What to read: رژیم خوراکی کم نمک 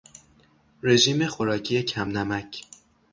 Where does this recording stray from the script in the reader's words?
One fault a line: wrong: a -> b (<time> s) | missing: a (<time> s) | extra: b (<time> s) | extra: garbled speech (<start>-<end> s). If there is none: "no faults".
no faults